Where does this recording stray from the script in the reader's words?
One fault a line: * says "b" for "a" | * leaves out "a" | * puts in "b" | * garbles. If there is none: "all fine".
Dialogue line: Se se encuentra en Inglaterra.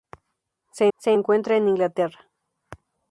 all fine